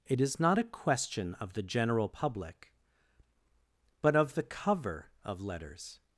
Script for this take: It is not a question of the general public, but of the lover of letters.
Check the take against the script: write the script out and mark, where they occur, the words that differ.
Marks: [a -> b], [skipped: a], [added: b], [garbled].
It is not a question of the general public, but of the [lover -> cover] of letters.